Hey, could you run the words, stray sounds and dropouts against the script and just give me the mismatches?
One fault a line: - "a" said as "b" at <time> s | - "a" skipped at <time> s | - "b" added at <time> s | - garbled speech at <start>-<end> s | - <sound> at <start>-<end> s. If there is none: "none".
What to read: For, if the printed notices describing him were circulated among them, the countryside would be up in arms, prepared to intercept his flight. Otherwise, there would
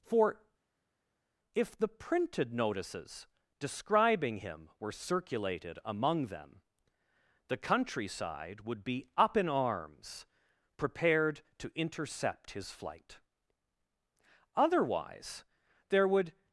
none